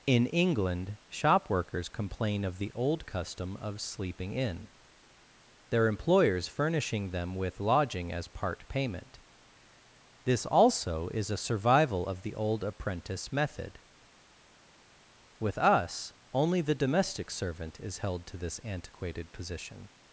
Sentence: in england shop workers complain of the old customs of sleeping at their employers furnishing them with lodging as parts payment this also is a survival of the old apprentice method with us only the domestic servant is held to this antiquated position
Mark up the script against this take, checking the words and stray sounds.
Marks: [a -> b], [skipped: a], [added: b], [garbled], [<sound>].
in england shop workers complain of the old [customs -> custom] of sleeping [at -> in] their employers furnishing them with lodging as [parts -> part] payment this also is a survival of the old apprentice method with us only the domestic servant is held to this antiquated position